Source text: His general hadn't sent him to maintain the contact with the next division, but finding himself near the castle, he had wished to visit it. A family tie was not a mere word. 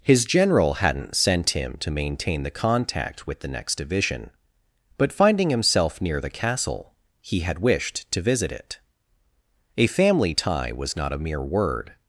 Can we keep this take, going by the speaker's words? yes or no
yes